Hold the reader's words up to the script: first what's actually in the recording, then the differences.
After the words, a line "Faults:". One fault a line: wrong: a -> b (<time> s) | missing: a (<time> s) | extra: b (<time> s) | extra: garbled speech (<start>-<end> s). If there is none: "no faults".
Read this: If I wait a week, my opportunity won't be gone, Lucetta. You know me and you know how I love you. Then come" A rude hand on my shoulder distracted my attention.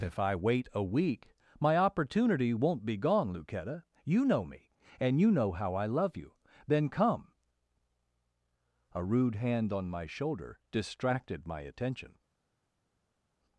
If I wait a week, my opportunity won't be gone, Lucetta. You know me and you know how I love you. Then come" A rude hand on my shoulder distracted my attention.
Faults:
no faults